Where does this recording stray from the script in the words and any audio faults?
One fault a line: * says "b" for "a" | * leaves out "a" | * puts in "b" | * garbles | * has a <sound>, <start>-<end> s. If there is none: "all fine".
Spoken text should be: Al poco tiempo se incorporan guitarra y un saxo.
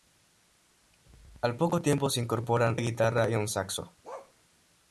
* has a bark, 4.0-4.3 s